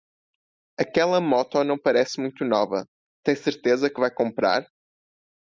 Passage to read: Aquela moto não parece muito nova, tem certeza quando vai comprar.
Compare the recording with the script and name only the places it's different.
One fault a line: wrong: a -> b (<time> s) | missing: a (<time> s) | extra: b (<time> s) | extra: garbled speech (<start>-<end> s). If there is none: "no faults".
wrong: quando -> que (3.9 s)